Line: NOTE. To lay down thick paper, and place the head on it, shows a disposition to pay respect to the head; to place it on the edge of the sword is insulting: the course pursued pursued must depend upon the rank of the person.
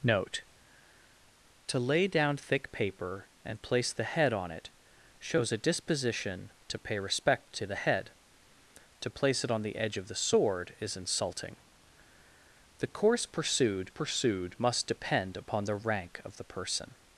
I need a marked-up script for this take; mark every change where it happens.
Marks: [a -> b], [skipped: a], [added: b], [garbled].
NOTE. To lay down thick paper, and place the head on it, shows a disposition to pay respect to the head; to place it on the edge of the sword is insulting: the course pursued pursued must depend upon the rank of the person.